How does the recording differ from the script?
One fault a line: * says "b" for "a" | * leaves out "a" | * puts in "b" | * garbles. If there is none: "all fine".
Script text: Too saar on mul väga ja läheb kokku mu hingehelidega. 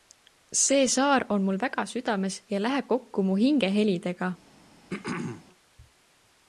* says "See" for "Too"
* puts in "südames"